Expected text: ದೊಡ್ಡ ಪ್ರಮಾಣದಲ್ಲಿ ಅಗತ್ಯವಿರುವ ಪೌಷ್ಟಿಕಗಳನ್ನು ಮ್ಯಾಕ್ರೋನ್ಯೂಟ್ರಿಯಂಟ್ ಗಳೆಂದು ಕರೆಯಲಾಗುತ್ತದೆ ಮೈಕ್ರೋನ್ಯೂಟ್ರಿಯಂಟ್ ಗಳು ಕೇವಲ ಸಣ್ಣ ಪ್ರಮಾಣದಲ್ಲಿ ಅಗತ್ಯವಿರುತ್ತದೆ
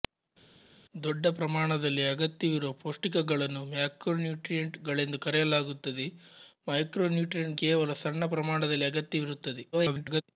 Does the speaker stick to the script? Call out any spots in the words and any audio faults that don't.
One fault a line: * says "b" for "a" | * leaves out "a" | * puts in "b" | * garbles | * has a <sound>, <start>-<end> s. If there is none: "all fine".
* leaves out "ಗಳು"
* garbles